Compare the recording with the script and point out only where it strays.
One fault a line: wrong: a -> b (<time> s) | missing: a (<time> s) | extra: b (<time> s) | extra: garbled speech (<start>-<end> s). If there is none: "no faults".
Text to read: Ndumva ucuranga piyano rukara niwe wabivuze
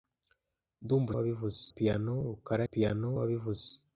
wrong: ucuranga -> wabivuze (1.2 s)
wrong: niwe -> piyano (2.7 s)